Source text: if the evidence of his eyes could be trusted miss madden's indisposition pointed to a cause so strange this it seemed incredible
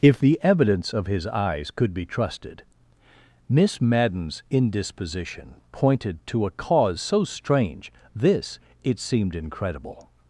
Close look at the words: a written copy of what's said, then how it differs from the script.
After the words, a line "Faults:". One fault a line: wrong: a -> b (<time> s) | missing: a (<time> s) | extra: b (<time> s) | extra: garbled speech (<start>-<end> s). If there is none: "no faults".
if the evidence of his eyes could be trusted miss madden's indisposition pointed to a cause so strange this it seemed incredible
Faults:
no faults